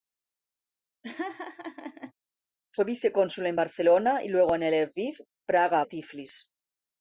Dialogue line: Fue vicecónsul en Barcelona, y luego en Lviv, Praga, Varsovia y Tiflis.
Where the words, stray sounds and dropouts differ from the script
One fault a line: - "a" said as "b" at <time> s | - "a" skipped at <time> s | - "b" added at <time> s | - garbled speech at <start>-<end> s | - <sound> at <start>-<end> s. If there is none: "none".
- laugh at 1.0-2.1 s
- "Varsovia" skipped at 5.9 s